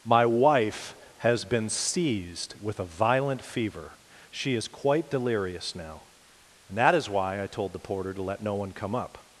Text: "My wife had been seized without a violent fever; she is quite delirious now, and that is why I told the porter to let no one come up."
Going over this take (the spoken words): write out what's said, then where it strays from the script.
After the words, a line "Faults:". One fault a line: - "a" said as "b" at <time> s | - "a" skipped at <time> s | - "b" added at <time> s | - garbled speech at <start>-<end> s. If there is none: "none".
"My wife has been seized with a violent fever; she is quite delirious now, and that is why I told the porter to let no one come up."
Faults:
- "had" said as "has" at 1.2 s
- "without" said as "with" at 2.6 s